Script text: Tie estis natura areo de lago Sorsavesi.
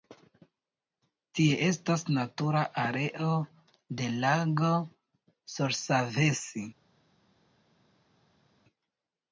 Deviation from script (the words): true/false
true